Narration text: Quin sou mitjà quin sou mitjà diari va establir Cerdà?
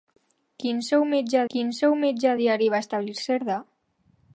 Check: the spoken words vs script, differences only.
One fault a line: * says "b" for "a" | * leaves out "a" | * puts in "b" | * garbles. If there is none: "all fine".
all fine